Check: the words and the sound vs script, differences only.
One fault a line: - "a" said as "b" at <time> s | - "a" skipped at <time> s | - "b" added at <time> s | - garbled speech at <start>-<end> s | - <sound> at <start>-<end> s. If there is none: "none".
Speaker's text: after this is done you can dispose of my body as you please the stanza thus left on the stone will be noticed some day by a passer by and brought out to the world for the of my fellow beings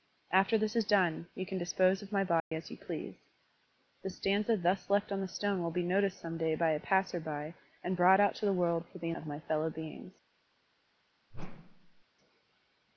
- dropout at 2.4-2.5 s
- whoosh at 11.3-12.0 s